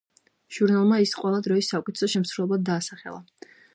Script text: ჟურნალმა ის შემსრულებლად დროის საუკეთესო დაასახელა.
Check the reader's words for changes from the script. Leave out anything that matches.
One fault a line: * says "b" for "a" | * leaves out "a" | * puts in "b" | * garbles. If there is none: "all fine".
* says "ყველა" for "შემსრულებლად"
* puts in "შემსრულებლად"